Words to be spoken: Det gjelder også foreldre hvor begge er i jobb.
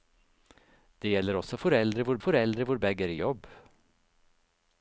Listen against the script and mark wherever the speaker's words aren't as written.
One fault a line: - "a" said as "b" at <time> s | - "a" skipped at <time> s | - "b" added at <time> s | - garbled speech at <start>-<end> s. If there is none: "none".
- "foreldre hvor" added at 2.2 s